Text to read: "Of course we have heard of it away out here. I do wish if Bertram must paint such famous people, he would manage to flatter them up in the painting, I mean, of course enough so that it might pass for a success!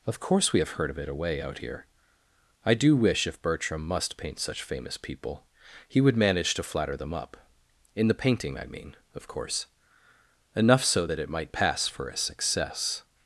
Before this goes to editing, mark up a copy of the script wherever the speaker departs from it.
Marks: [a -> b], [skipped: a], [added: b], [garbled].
"Of course we have heard of it away out here. I do wish if Bertram must paint such famous people, he would manage to flatter them up in the painting, I mean, of course enough so that it might pass for a success!